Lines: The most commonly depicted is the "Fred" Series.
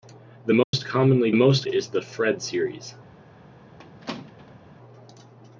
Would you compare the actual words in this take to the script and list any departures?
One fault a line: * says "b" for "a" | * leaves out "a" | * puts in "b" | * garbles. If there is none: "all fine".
* says "most" for "depicted"